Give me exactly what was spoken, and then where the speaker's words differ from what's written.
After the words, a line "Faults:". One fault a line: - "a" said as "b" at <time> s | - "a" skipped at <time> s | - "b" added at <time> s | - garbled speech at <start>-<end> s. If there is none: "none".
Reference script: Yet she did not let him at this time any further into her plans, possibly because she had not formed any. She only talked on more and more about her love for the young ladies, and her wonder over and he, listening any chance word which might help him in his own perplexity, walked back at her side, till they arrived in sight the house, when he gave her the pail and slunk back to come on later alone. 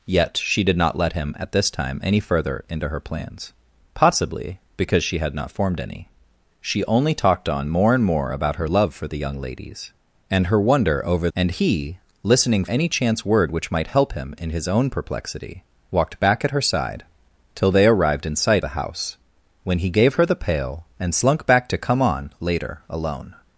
Yet she did not let him at this time any further into her plans, possibly because she had not formed any. She only talked on more and more about her love for the young ladies, and her wonder over and he, listening any chance word which might help him in his own perplexity, walked back at her side, till they arrived in sight the house, when he gave her the pail and slunk back to come on later alone.
Faults:
none